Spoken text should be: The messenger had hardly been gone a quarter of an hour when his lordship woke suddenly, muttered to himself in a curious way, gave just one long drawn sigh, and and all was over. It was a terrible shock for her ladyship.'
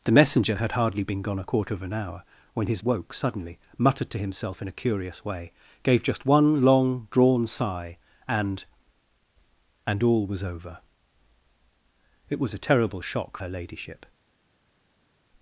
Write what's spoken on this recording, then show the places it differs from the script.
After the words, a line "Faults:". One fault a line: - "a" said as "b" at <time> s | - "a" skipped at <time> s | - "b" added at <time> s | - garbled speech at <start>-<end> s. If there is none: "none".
The messenger had hardly been gone a quarter of an hour when his woke suddenly, muttered to himself in a curious way, gave just one long drawn sigh, and and all was over. It was a terrible shock her ladyship.'
Faults:
- "lordship" skipped at 2.8 s
- "for" skipped at 13.4 s